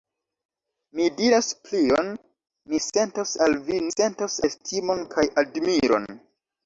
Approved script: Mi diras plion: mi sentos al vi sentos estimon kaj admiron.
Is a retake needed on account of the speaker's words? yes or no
no